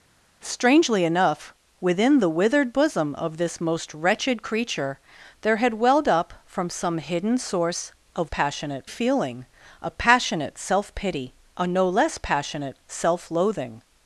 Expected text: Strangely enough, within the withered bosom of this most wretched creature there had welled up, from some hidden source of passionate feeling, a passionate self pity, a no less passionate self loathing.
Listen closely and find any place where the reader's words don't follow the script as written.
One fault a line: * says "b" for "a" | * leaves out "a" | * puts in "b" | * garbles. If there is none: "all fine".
all fine